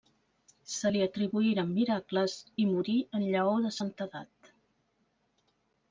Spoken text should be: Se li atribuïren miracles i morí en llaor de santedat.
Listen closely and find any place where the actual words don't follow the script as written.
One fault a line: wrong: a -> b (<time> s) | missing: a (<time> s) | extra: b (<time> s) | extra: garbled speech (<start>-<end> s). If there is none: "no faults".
no faults